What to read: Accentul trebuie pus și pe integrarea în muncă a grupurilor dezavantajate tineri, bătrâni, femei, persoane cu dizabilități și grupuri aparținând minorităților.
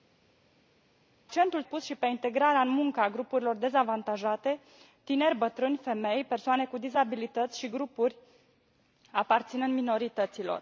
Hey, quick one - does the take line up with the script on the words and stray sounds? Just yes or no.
no